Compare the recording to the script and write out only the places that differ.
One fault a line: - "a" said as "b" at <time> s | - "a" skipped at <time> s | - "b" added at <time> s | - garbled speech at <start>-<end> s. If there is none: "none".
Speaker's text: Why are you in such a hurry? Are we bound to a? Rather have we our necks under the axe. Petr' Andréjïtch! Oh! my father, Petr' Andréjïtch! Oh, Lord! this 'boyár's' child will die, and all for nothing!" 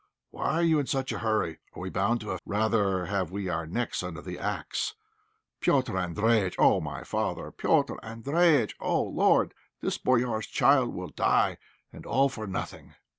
none